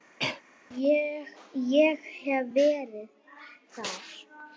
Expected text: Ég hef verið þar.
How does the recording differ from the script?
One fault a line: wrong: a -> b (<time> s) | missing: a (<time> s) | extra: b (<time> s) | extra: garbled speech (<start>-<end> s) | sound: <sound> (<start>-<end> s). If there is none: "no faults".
sound: cough (0.2-0.4 s)